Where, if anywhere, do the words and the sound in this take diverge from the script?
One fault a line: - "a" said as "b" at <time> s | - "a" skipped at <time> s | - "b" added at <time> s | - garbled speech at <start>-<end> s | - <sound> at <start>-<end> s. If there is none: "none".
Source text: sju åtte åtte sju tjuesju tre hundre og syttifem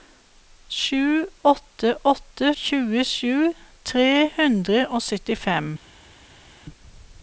- "sju" skipped at 2.5 s